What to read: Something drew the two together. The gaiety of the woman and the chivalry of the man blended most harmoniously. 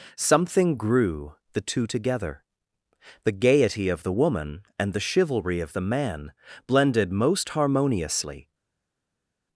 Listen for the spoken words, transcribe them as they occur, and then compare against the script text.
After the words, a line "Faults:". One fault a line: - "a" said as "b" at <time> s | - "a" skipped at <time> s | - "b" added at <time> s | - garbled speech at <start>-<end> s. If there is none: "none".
Something grew the two together. The gaiety of the woman and the chivalry of the man blended most harmoniously.
Faults:
- "drew" said as "grew" at 0.8 s